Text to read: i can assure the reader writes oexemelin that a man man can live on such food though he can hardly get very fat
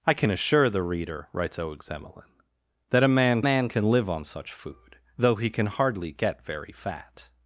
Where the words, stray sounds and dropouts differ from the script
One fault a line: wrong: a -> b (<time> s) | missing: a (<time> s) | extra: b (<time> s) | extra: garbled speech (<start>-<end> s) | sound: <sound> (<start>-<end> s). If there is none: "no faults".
no faults